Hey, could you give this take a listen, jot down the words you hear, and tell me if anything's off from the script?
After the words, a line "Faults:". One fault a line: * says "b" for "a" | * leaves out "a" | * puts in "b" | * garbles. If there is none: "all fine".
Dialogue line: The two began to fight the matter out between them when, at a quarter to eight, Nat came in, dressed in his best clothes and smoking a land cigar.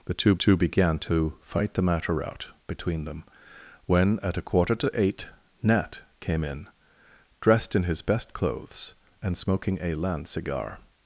The two two began to fight the matter out between them when, at a quarter to eight, Nat came in, dressed in his best clothes and smoking a land cigar.
Faults:
* puts in "two"